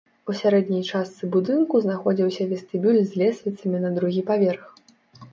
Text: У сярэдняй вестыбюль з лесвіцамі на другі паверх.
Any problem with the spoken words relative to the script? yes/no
yes